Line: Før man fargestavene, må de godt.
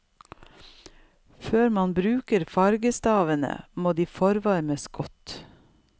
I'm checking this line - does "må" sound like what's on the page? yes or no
yes